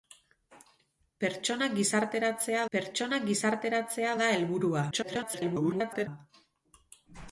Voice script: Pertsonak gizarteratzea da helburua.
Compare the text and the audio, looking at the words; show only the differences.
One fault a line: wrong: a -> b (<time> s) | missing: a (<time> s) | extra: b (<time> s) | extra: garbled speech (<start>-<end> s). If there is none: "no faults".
extra: pertsonak gizarteratzea (2.7 s)
extra: garbled speech (4.9-6.1 s)